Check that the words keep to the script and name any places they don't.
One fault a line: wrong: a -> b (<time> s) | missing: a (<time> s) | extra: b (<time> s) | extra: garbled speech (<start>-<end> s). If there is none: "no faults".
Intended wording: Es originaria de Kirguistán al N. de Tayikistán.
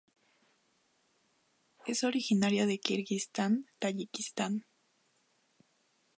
missing: al N de (3.7 s)